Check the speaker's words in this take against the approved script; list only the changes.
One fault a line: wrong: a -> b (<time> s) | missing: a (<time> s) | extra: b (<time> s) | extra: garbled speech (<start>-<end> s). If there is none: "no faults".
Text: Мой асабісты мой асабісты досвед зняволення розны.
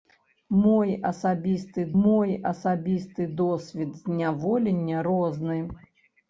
no faults